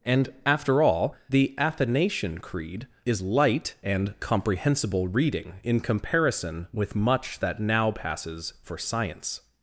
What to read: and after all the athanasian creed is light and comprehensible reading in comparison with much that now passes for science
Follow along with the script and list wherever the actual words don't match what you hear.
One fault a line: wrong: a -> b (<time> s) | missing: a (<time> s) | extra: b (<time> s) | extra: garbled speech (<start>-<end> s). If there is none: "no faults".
no faults